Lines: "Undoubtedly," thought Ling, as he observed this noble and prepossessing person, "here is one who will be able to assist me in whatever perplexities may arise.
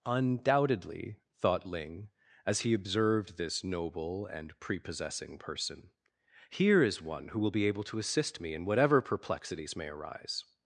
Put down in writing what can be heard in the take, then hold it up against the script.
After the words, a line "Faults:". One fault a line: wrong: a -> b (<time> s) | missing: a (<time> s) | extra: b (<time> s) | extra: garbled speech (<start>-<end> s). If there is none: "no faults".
"Undoubtedly," thought Ling, as he observed this noble and prepossessing person, "here is one who will be able to assist me in whatever perplexities may arise.
Faults:
no faults